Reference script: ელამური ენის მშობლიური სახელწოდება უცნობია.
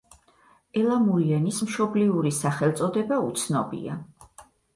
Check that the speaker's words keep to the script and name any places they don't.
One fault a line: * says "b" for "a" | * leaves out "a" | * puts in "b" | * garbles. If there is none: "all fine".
all fine